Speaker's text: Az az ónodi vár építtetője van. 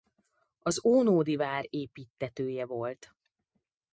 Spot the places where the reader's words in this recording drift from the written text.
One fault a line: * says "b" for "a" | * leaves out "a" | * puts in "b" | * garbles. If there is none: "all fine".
* leaves out "az"
* says "volt" for "van"